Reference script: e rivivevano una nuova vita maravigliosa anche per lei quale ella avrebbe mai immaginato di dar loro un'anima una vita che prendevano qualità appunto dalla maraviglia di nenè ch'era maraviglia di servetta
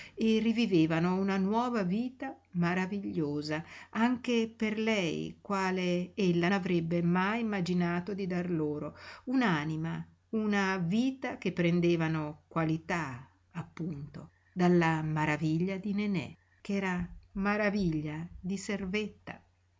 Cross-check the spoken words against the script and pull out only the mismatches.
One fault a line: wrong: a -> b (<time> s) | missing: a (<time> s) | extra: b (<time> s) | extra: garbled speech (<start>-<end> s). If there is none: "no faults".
no faults